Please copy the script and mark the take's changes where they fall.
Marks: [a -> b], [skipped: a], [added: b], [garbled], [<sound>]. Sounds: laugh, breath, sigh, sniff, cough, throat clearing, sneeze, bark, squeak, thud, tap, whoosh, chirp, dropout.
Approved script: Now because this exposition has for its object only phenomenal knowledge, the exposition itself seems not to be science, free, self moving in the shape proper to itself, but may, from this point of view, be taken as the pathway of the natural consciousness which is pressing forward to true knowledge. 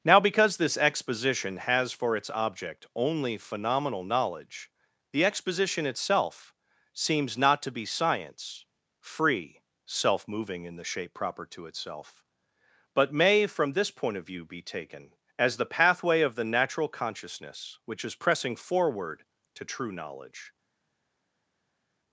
Now because this exposition has for its object only phenomenal knowledge, the exposition itself seems not to be science, free, self moving in the shape proper to itself, but may, from this point of view, be taken as the pathway of the natural consciousness which is pressing forward to true knowledge.